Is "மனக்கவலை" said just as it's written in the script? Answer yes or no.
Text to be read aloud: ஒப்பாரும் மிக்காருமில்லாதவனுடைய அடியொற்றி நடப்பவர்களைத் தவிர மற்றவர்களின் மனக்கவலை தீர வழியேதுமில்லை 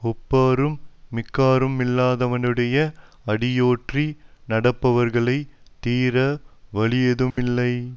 no